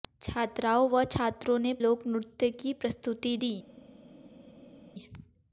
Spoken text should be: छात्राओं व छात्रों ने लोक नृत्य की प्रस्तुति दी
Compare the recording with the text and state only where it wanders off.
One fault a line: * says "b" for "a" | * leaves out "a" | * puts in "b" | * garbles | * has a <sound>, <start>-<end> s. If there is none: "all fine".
all fine